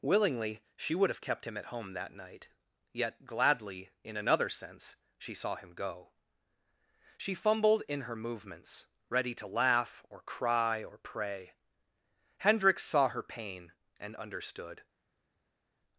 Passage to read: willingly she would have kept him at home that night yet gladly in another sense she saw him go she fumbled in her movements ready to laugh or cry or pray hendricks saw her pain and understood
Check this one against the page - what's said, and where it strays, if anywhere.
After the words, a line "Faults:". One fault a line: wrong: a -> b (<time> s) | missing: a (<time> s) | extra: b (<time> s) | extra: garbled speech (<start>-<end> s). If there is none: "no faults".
willingly she would have kept him at home that night yet gladly in another sense she saw him go she fumbled in her movements ready to laugh or cry or pray hendricks saw her pain and understood
Faults:
no faults